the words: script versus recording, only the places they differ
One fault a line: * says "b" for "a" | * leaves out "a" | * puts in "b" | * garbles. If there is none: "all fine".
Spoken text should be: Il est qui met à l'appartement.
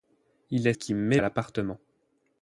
all fine